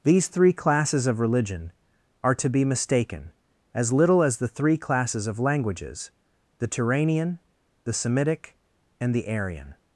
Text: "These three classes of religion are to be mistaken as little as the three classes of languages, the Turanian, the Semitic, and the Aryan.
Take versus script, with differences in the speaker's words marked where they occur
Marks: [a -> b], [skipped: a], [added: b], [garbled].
"These three classes of religion are to be mistaken as little as the three classes of languages, the Turanian, the Semitic, and the Aryan.